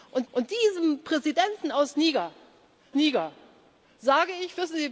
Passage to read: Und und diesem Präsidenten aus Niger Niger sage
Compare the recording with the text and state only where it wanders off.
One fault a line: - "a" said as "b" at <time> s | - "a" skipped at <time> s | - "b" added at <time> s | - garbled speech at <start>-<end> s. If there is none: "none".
none